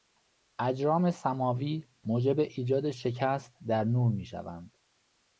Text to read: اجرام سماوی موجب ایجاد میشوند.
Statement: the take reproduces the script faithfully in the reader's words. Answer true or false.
false